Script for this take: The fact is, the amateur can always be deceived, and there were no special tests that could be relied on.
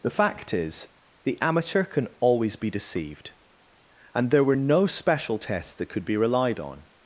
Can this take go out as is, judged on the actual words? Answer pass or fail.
pass